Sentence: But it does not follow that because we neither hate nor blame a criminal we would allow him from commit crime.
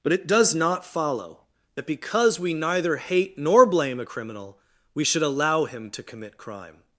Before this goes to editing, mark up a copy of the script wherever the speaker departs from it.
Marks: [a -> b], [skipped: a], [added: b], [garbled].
But it does not follow that because we neither hate nor blame a criminal we [would -> should] allow him [from -> to] commit crime.